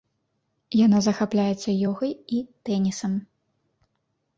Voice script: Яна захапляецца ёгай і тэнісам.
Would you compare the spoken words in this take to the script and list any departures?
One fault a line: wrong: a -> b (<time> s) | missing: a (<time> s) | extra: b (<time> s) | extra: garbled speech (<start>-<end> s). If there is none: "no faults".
no faults